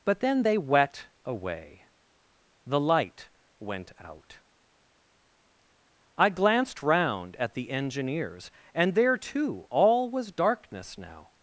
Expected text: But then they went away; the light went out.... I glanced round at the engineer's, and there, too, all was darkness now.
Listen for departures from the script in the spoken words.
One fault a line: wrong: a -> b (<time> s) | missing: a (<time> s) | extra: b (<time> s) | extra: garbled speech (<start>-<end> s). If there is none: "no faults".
wrong: went -> wet (0.6 s)